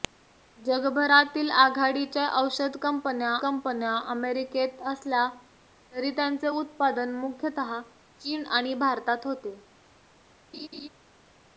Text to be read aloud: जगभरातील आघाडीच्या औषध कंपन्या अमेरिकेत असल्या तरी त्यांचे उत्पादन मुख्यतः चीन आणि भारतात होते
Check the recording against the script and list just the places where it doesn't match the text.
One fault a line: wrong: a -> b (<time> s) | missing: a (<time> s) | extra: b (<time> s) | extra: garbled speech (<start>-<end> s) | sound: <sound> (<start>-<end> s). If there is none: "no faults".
extra: कंपन्या (3.4 s)
sound: laugh (10.5-10.9 s)